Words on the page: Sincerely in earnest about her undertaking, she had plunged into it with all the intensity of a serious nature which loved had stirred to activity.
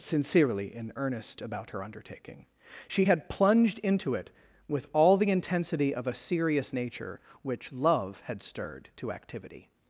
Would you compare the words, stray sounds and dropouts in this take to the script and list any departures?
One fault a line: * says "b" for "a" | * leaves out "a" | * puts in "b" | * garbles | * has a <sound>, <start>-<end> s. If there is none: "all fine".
* says "love" for "loved"